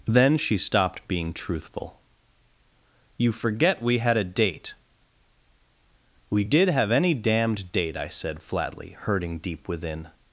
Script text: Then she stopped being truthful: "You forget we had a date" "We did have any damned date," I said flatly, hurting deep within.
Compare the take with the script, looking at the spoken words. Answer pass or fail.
pass